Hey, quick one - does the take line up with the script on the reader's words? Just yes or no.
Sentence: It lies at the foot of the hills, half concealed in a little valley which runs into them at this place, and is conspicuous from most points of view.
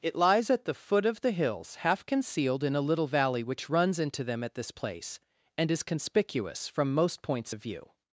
yes